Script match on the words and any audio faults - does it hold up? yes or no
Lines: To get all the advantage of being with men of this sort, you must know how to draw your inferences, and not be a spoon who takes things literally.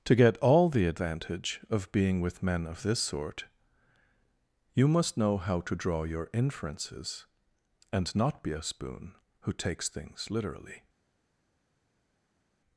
yes